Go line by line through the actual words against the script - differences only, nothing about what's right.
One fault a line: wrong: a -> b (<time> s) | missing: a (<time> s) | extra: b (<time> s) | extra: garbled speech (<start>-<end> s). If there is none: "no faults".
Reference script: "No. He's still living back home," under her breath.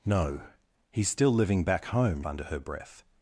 no faults